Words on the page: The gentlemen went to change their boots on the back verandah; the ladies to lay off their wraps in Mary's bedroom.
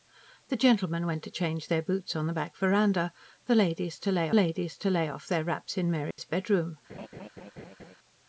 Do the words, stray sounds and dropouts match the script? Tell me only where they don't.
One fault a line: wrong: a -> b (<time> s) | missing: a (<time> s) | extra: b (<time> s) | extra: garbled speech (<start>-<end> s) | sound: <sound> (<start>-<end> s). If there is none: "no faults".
extra: ladies to lay (4.3 s)
sound: dropout (6.1-6.2 s)
sound: laugh (6.9-7.9 s)